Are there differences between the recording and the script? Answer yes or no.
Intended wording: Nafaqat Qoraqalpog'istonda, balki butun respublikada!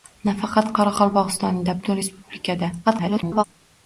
yes